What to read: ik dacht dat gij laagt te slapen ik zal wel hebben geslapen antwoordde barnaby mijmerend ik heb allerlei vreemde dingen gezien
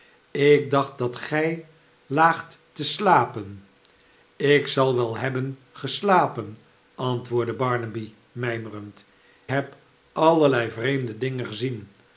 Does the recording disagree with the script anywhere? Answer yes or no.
yes